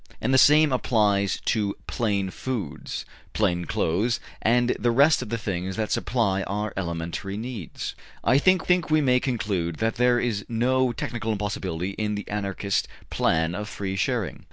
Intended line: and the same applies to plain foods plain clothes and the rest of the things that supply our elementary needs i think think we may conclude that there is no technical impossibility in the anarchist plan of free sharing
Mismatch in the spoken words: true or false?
false